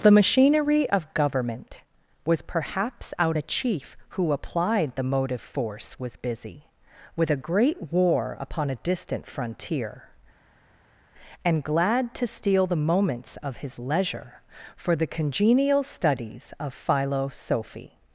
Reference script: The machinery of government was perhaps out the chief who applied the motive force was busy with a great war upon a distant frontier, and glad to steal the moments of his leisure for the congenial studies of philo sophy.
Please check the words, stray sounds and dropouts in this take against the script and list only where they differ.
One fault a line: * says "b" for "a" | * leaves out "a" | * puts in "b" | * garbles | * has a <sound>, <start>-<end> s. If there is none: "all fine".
all fine